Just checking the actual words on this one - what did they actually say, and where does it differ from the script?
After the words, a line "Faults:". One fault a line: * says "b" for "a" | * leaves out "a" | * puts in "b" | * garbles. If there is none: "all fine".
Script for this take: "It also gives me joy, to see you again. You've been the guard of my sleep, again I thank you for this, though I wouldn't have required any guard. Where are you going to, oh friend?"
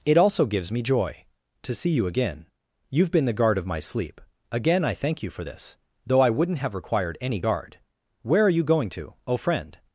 "It also gives me joy, to see you again. You've been the guard of my sleep, again I thank you for this, though I wouldn't have required any guard. Where are you going to, oh friend?"
Faults:
all fine